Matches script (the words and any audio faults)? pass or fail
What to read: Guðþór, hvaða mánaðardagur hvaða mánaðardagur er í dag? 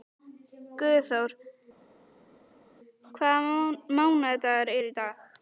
fail